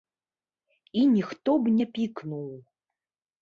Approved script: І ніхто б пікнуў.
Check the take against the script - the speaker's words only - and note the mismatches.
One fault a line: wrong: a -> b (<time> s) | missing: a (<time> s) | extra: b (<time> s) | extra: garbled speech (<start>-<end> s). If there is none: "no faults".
extra: не (1.7 s)